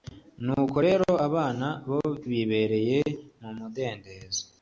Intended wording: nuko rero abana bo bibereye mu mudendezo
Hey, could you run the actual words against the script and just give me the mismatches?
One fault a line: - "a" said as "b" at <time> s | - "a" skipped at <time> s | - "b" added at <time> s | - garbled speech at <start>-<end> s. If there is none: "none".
none